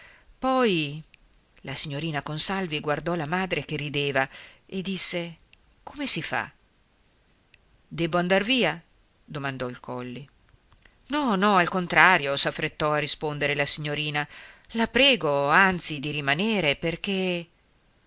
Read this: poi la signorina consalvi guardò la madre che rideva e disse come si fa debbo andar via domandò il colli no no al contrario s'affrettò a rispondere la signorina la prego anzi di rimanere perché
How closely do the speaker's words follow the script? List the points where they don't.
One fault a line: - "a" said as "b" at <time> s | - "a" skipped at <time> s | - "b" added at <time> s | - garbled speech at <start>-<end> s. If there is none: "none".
none